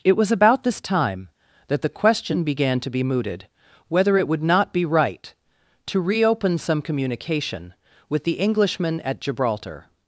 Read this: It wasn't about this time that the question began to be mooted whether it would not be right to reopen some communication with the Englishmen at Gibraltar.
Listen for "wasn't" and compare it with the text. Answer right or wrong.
wrong